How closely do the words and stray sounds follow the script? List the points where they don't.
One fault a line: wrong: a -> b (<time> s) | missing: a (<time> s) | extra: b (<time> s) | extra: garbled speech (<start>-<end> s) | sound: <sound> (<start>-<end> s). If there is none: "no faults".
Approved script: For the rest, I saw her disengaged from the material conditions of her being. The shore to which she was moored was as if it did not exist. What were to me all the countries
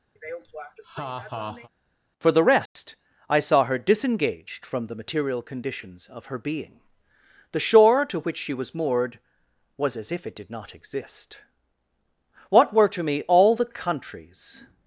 sound: laugh (0.2-1.7 s)
sound: dropout (2.7-2.8 s)